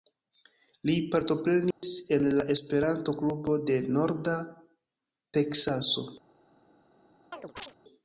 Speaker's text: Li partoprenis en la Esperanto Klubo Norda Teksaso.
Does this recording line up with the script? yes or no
no